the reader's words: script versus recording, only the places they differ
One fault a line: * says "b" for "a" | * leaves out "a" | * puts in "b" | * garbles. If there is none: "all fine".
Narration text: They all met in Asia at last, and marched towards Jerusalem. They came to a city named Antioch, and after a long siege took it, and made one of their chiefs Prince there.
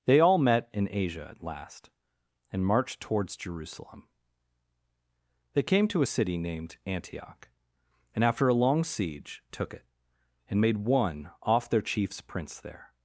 * says "off" for "of"